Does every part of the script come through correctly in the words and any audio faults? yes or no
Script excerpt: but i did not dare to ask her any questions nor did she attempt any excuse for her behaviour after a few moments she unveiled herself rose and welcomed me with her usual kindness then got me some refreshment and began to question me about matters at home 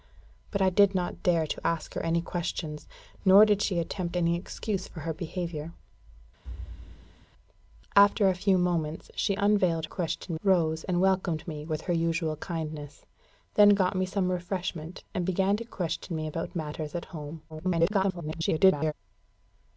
no